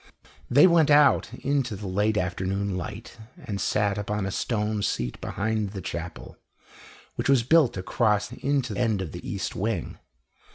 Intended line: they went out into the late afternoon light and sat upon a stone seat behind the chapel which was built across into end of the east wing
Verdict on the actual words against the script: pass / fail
pass